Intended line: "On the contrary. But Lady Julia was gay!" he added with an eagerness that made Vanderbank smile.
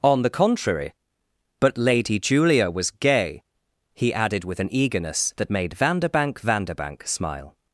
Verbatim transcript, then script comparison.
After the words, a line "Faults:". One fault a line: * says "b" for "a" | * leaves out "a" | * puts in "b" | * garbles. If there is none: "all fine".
"On the contrary. But Lady Julia was gay!" he added with an eagerness that made Vanderbank Vanderbank smile.
Faults:
* puts in "Vanderbank"